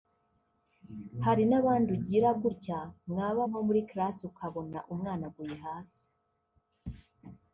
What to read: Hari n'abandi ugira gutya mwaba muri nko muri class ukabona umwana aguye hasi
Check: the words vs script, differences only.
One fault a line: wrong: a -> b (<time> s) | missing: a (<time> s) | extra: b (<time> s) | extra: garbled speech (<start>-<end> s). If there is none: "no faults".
missing: muri (3.4 s)